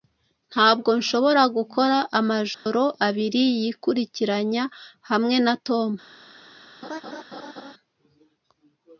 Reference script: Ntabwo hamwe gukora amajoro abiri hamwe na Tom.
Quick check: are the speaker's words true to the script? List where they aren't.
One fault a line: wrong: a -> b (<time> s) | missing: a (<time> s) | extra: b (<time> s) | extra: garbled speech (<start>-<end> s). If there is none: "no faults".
wrong: hamwe -> nshobora (1.0 s)
extra: yikurikiranya (3.6 s)